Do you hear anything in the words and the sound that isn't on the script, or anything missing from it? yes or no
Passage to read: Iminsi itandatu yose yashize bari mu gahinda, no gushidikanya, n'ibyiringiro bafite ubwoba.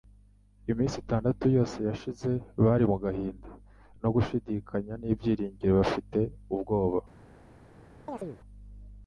yes